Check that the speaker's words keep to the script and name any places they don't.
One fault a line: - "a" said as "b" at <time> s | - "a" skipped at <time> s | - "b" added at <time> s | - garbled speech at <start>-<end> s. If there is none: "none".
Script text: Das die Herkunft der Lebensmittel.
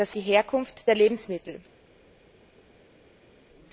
none